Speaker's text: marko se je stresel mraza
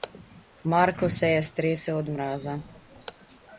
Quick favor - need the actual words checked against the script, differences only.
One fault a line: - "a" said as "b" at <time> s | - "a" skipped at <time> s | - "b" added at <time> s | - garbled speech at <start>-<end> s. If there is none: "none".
- "od" added at 2.0 s